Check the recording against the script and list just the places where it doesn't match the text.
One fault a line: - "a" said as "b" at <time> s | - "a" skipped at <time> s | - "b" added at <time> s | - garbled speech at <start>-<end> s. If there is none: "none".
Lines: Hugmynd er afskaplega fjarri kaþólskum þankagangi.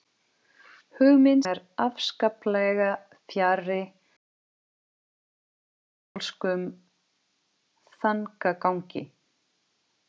none